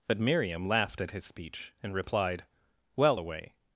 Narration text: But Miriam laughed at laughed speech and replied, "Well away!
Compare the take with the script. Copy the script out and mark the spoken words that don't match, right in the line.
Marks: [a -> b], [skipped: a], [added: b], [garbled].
But Miriam laughed at [laughed -> his] speech and replied, "Well away!